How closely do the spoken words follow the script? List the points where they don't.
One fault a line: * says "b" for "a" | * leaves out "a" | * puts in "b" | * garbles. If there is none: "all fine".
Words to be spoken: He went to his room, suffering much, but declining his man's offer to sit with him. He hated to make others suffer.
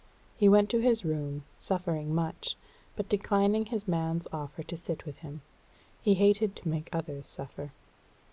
all fine